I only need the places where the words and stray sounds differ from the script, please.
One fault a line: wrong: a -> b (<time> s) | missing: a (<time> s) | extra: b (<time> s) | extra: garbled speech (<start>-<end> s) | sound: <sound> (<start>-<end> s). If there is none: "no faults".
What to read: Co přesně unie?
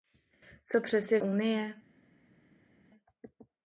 no faults